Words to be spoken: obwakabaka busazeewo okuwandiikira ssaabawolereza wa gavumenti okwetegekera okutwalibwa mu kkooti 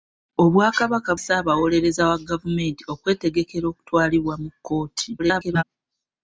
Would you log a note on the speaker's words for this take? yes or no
yes